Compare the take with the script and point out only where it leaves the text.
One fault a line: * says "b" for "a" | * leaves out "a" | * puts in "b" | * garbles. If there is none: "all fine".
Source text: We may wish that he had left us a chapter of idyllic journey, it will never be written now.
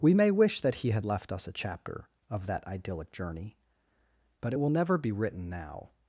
* puts in "that"
* puts in "but"